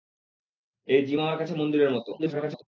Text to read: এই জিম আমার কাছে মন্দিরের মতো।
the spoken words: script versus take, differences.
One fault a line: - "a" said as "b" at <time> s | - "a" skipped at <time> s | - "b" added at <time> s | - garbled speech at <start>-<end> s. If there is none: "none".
- garbled speech at 2.2-2.6 s